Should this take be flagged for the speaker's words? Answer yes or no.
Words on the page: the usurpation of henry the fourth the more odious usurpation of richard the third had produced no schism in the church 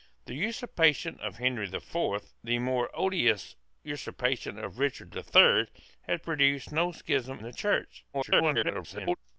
yes